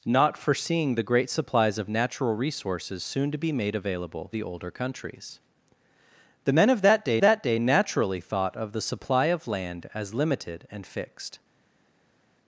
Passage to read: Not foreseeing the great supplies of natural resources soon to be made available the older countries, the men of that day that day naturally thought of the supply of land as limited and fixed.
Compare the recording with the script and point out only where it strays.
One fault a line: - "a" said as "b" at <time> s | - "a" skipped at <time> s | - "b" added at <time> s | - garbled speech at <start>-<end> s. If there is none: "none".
none